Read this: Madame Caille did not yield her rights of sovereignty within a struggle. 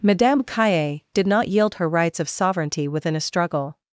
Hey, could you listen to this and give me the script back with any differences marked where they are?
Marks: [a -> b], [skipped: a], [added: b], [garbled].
Madame Caille did not yield her rights of sovereignty within a struggle.